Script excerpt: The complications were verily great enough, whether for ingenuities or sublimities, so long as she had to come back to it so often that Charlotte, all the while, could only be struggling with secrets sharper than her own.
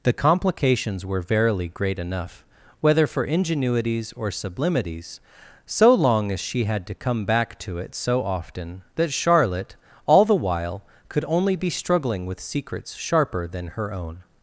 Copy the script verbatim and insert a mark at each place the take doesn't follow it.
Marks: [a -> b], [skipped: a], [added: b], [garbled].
The complications were verily great enough, whether for ingenuities or sublimities, so long as she had to come back to it so often that Charlotte, all the while, could only be struggling with secrets sharper than her own.